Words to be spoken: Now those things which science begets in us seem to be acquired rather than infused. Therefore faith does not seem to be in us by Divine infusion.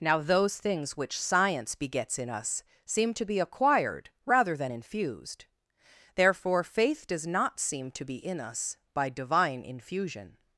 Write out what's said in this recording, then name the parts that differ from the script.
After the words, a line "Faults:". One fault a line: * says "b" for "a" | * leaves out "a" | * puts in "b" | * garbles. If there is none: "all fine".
Now those things which science begets in us seem to be acquired rather than infused. Therefore faith does not seem to be in us by Divine infusion.
Faults:
all fine